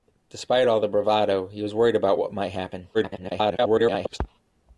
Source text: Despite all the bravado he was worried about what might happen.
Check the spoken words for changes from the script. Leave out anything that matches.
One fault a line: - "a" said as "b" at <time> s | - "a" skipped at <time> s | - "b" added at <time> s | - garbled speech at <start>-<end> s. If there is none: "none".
- garbled speech at 2.9-4.2 s